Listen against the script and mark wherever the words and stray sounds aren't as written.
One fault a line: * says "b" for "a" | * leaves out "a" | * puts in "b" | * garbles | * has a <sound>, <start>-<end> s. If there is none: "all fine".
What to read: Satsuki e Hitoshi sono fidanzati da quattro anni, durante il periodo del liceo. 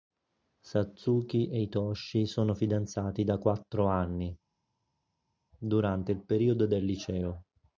all fine